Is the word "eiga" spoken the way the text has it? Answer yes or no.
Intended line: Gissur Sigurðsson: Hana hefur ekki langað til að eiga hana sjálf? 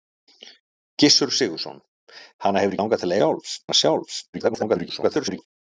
no